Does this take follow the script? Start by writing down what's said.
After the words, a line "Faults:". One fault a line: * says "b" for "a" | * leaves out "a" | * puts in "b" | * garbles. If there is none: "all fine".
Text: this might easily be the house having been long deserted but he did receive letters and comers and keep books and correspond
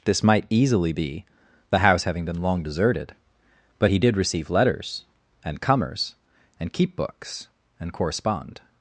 this might easily be the house having been long deserted but he did receive letters and comers and keep books and correspond
Faults:
all fine